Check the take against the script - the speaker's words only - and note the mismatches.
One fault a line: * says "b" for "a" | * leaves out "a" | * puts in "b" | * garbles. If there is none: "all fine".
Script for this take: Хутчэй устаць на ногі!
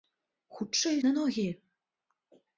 * leaves out "устаць"